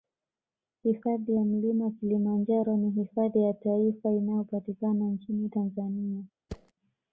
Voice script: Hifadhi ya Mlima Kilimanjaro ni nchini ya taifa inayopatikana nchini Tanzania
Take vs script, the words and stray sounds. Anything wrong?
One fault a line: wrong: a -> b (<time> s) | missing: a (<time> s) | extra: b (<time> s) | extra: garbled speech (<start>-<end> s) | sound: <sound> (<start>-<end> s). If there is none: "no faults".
wrong: nchini -> hifadhi (2.9 s)
sound: thud (6.5-6.7 s)